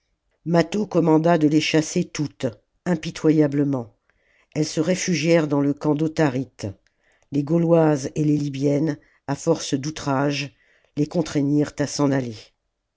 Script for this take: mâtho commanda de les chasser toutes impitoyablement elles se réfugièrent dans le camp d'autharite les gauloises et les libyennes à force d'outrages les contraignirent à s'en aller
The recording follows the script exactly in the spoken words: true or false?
true